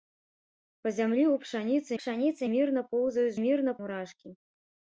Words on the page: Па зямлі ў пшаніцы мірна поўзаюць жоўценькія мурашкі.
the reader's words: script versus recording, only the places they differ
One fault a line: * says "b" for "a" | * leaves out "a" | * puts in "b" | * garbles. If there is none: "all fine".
* puts in "пшаніцы"
* says "мірна" for "жоўценькія"